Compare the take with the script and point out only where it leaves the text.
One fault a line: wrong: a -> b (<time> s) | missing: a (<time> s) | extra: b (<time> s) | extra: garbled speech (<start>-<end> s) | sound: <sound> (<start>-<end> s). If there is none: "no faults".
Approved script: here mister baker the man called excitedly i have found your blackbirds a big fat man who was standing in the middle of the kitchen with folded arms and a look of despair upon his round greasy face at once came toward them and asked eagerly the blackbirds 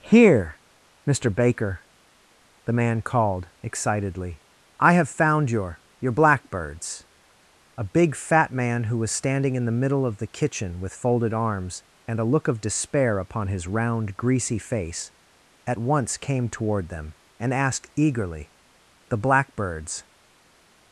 extra: your (6.0 s)